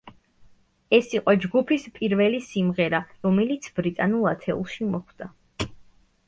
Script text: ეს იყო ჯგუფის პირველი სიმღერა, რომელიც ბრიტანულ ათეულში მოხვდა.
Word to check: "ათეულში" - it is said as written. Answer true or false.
true